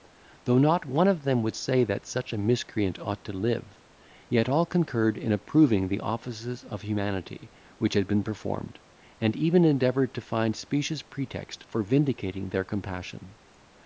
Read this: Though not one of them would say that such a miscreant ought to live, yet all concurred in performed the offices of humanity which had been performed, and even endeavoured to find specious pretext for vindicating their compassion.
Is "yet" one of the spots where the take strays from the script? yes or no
no